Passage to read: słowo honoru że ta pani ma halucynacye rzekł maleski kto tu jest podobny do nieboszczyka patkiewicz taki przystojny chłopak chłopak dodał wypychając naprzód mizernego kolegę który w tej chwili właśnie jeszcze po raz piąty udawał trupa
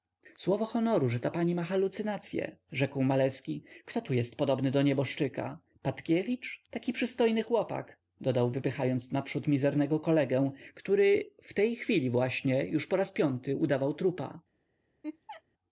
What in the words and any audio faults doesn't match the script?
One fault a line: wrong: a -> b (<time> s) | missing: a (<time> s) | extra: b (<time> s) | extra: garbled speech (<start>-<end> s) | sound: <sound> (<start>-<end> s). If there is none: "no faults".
missing: chłopak (8.0 s)
wrong: jeszcze -> już (12.7 s)
sound: laugh (15.0-15.4 s)